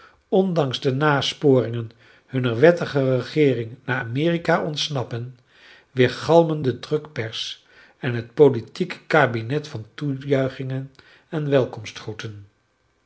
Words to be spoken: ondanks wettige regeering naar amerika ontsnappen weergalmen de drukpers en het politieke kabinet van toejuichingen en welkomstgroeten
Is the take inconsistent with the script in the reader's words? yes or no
yes